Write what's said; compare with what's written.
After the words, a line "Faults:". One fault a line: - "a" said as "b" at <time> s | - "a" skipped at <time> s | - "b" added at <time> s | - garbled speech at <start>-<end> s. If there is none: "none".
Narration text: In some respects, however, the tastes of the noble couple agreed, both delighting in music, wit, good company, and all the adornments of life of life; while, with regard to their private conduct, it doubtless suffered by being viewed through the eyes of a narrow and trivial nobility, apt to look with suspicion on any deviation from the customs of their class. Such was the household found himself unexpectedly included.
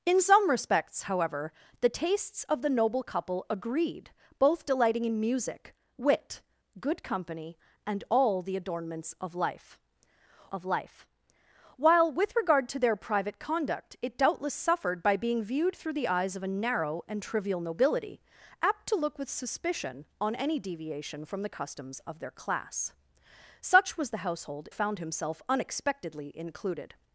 In some respects, however, the tastes of the noble couple agreed, both delighting in music, wit, good company, and all the adornments of life of life; while, with regard to their private conduct, it doubtless suffered by being viewed through the eyes of a narrow and trivial nobility, apt to look with suspicion on any deviation from the customs of their class. Such was the household found himself unexpectedly included.
Faults:
none